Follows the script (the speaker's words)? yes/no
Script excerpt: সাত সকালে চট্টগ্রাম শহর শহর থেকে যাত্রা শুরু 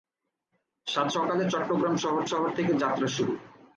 yes